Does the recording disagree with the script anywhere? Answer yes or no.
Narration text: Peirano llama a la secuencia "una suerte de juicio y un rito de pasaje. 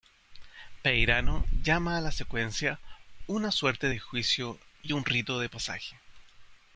no